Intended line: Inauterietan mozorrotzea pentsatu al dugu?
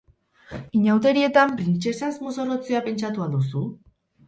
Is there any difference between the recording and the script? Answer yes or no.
yes